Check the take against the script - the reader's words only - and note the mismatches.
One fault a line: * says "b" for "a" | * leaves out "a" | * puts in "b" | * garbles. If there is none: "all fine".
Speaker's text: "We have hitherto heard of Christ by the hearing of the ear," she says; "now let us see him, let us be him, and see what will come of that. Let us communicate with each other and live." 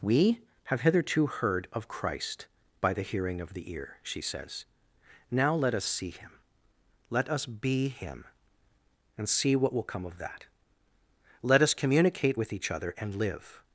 all fine